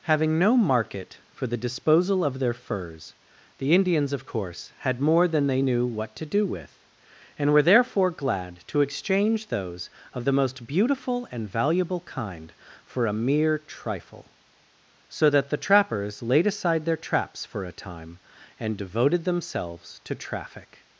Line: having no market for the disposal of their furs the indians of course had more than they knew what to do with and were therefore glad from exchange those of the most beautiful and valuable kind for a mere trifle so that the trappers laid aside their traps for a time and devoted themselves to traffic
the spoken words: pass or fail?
fail